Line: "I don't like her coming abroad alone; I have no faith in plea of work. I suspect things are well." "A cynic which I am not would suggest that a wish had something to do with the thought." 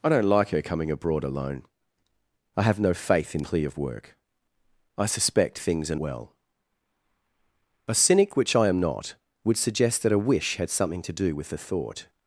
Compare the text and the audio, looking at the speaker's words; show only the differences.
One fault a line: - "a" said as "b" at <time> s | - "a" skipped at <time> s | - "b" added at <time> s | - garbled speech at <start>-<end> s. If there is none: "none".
none